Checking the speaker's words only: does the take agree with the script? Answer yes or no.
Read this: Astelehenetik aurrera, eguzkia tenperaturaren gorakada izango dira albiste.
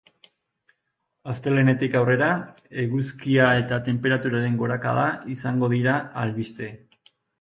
no